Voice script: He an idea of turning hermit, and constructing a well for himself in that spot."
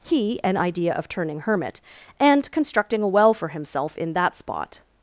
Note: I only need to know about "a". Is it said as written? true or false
true